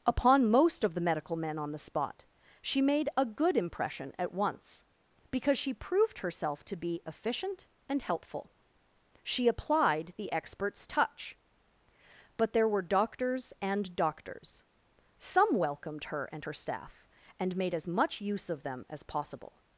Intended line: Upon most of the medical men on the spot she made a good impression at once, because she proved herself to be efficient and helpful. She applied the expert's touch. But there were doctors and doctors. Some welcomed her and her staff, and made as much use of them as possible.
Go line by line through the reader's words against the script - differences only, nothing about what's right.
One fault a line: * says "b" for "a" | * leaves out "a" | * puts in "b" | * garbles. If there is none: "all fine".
all fine